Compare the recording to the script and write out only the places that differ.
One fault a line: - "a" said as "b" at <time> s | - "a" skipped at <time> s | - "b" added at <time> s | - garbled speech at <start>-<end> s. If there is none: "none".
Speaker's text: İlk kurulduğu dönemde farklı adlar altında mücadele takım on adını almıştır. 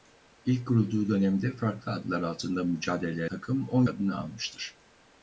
none